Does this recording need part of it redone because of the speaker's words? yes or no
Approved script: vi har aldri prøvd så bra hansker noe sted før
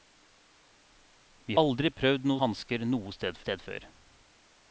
yes